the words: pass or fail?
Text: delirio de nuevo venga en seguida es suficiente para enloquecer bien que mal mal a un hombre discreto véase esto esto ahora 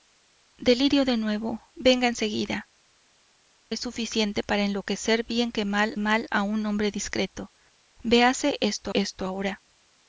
pass